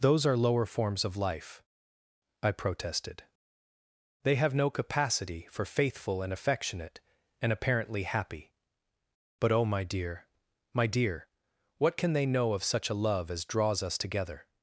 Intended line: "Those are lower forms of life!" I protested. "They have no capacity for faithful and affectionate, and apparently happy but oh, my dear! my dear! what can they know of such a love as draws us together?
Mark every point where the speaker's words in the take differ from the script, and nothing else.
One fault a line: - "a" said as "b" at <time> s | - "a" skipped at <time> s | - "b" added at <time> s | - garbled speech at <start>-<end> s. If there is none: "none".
none